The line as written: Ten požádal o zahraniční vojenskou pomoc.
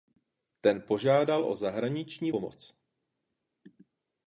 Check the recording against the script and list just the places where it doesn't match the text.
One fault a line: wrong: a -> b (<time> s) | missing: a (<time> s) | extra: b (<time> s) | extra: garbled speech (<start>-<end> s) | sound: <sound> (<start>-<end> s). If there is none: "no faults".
missing: vojenskou (2.3 s)